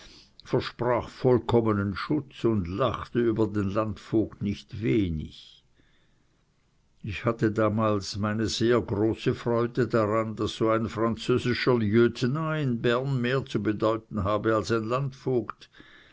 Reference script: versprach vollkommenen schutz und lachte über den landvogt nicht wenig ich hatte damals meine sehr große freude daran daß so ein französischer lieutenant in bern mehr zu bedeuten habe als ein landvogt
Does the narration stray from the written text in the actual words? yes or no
no